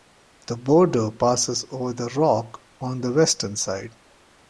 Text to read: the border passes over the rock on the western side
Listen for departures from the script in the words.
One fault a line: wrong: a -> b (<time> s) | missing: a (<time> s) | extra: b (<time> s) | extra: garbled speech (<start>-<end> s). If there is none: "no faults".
no faults